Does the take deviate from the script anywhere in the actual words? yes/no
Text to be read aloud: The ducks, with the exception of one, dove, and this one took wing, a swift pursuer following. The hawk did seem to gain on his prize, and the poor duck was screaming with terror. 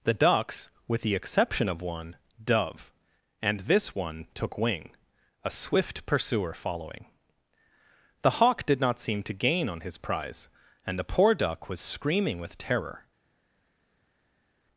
yes